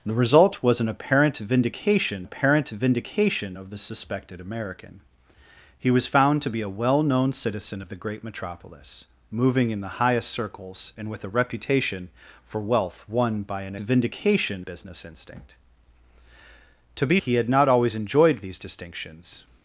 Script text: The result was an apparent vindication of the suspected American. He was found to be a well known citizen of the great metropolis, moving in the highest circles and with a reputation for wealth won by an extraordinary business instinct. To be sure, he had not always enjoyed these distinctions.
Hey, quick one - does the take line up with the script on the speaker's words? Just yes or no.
no